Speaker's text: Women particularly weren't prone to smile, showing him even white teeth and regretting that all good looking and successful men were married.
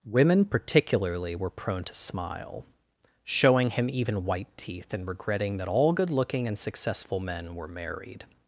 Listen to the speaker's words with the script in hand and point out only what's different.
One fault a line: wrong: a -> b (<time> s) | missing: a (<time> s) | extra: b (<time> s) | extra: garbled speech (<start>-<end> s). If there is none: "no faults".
wrong: weren't -> were (1.4 s)